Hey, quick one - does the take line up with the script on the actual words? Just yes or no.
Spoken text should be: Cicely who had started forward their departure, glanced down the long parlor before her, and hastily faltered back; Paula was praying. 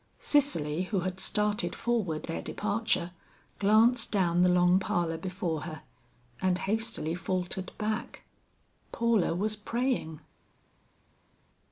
yes